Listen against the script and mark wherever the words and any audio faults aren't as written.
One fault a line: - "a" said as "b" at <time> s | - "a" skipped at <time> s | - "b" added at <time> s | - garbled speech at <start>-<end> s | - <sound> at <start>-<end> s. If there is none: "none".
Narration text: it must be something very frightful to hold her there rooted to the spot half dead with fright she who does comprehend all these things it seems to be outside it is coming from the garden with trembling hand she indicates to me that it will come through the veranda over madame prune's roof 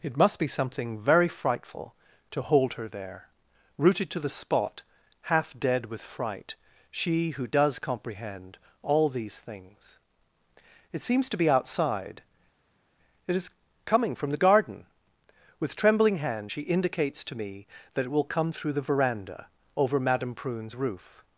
none